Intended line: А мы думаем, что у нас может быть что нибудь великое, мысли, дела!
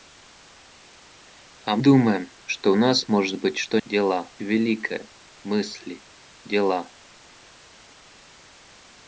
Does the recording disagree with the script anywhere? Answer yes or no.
yes